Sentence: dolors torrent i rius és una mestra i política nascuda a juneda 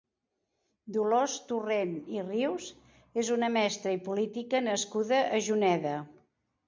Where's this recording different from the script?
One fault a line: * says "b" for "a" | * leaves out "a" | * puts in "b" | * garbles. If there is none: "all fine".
all fine